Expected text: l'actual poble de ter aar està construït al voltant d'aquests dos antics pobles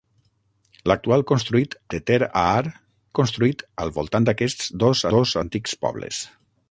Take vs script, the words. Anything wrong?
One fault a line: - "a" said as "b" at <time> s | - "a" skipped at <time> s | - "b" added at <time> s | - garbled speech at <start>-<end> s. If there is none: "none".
- "poble" said as "construït" at 1.3 s
- "està" skipped at 2.7 s
- "dos" added at 5.2 s